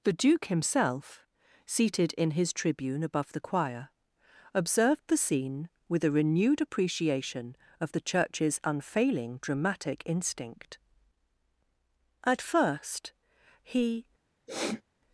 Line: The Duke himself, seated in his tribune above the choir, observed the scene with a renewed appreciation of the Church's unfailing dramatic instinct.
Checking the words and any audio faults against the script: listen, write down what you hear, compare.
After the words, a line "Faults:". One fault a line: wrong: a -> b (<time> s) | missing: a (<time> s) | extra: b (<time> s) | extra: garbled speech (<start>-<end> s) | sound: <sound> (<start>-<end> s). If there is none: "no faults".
The Duke himself, seated in his tribune above the choir, observed the scene with a renewed appreciation of the Church's unfailing dramatic instinct. At first he
Faults:
extra: At first he (12.2 s)
sound: sniff (14.5-14.8 s)